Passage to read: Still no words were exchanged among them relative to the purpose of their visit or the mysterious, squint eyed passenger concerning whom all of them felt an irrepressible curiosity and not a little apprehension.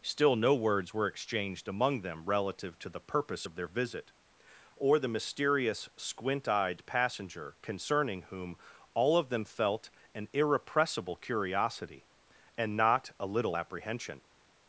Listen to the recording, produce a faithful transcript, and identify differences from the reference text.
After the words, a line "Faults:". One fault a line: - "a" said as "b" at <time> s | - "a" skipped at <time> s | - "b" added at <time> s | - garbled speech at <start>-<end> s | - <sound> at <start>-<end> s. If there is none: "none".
Still no words were exchanged among them relative to the purpose of their visit or the mysterious, squint eyed passenger concerning whom all of them felt an irrepressible curiosity and not a little apprehension.
Faults:
none